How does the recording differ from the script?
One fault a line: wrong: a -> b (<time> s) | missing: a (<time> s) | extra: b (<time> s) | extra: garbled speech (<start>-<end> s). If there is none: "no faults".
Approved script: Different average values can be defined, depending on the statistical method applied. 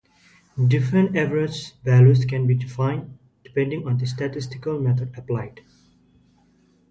no faults